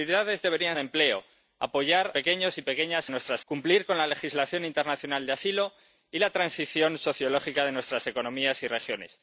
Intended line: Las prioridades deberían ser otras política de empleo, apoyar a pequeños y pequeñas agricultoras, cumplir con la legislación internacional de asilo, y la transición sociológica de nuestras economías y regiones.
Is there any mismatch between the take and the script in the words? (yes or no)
yes